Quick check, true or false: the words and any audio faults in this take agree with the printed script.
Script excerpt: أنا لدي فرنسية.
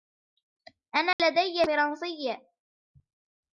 false